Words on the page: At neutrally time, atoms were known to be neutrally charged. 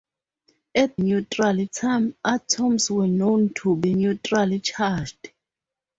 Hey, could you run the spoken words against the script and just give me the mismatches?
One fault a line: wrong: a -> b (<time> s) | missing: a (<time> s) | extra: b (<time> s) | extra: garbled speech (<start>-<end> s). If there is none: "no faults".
no faults